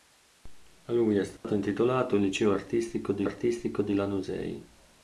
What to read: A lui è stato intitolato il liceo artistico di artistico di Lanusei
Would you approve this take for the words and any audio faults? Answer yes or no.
no